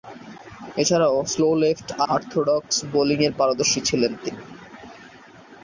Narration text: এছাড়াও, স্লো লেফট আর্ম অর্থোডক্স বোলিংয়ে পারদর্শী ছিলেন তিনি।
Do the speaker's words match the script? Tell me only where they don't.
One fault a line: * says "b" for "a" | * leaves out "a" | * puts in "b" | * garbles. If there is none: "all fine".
* leaves out "আর্ম"